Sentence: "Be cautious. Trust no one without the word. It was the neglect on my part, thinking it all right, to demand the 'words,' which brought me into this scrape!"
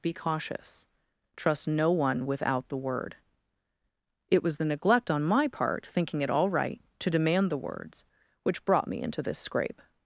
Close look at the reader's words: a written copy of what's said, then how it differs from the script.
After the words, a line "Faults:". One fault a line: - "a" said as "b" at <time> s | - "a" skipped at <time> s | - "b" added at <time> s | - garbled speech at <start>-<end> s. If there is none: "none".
"Be cautious. Trust no one without the word. It was the neglect on my part, thinking it all right, to demand the 'words,' which brought me into this scrape!"
Faults:
none